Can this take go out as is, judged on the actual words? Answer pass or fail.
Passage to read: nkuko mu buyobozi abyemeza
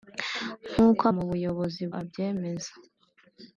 pass